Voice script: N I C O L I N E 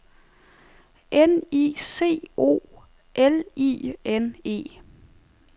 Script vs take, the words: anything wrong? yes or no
no